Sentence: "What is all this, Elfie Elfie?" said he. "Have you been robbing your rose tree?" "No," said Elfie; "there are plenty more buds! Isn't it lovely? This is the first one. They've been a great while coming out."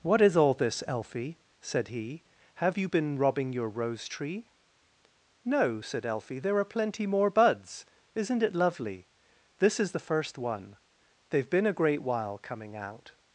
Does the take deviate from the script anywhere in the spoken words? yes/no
yes